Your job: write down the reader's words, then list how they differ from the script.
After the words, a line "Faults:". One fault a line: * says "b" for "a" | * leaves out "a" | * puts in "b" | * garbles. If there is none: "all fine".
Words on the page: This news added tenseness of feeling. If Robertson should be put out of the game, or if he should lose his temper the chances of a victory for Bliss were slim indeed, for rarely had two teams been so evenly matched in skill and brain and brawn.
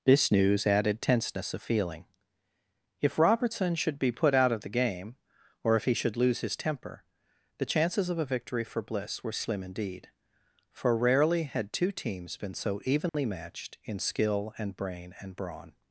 This news added tenseness of feeling. If Robertson should be put out of the game, or if he should lose his temper the chances of a victory for Bliss were slim indeed, for rarely had two teams been so evenly matched in skill and brain and brawn.
Faults:
all fine